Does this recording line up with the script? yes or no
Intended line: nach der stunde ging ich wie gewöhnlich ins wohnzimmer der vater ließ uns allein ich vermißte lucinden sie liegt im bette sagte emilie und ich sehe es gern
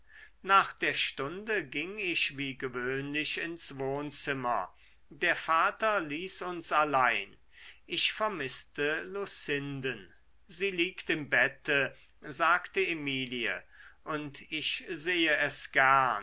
yes